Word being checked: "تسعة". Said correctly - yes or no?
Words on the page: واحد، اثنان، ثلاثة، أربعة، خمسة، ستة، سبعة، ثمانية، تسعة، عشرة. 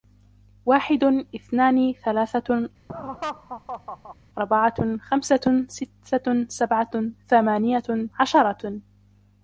no